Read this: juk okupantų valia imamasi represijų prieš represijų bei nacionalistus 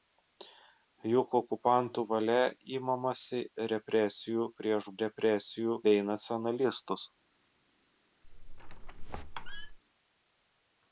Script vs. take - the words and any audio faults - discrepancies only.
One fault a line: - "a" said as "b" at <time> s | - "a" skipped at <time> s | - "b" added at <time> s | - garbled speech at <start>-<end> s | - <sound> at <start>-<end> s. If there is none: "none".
- squeak at 8.2-9.8 s